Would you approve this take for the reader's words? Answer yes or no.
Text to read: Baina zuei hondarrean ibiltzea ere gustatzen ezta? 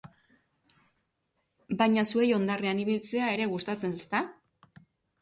yes